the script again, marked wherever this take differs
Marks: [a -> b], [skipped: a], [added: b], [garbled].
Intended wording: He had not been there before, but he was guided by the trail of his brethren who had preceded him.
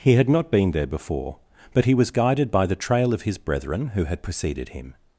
He had not been there before, but he was guided by the trail of his brethren who had preceded him.